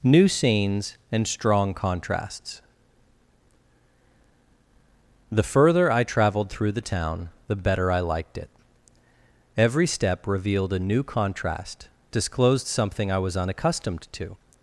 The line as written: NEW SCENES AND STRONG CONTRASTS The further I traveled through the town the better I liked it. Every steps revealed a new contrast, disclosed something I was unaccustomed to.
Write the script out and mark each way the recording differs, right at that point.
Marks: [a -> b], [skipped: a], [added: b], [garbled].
NEW SCENES AND STRONG CONTRASTS The further I traveled through the town the better I liked it. Every [steps -> step] revealed a new contrast, disclosed something I was unaccustomed to.